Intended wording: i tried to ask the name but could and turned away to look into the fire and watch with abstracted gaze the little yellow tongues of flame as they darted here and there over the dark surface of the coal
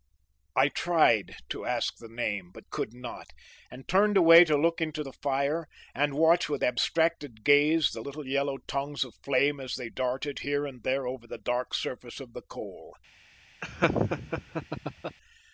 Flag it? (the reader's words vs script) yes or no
yes